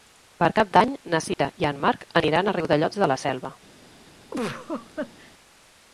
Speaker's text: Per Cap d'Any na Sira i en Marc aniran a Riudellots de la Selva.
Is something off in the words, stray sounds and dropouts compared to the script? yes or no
yes